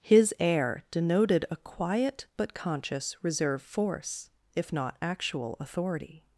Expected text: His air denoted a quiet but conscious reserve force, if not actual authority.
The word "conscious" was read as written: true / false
true